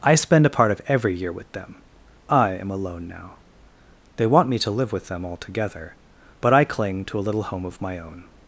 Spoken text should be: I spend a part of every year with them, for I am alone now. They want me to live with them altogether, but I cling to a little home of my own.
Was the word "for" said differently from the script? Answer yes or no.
yes